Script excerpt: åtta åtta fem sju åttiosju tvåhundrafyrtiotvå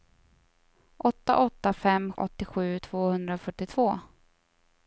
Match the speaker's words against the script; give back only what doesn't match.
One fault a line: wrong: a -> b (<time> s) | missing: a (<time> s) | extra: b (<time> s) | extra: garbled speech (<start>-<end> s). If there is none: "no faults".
missing: sju (2.1 s)